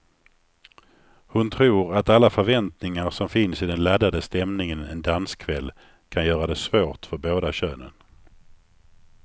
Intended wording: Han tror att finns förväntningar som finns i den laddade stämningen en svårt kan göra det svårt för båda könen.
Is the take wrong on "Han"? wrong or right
wrong